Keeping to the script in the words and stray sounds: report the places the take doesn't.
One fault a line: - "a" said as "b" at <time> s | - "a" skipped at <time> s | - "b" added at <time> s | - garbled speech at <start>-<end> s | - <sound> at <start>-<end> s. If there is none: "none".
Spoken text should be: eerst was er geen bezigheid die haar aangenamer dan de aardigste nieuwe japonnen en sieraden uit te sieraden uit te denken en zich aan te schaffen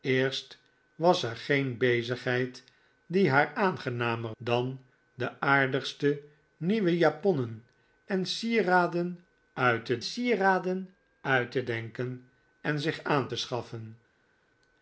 none